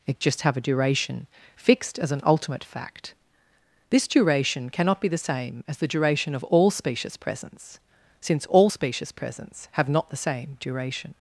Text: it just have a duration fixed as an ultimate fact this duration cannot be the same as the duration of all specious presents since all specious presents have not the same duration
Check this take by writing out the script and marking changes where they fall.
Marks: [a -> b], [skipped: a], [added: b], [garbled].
it just have a duration fixed as an ultimate fact this duration cannot be the same as the duration of all specious presents since all specious presents have not the same duration